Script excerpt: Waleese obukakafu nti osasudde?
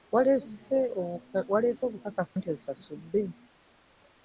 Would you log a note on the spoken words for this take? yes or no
no